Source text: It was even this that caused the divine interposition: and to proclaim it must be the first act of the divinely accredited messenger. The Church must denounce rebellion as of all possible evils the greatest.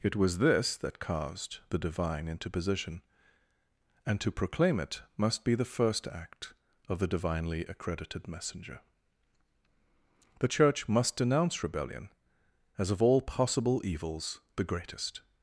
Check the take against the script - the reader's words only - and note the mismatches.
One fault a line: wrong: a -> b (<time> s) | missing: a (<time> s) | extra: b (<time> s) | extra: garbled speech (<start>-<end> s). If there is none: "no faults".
missing: even (0.4 s)